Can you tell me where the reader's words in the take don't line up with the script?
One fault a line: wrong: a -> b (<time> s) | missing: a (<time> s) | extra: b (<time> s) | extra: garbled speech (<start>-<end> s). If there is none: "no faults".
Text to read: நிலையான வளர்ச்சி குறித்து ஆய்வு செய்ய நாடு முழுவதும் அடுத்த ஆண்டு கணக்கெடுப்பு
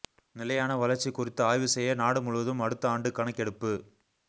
no faults